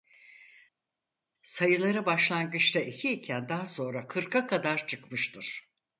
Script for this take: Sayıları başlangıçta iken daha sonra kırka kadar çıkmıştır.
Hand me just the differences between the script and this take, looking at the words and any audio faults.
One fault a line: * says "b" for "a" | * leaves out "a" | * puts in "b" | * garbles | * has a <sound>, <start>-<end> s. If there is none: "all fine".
* puts in "iki"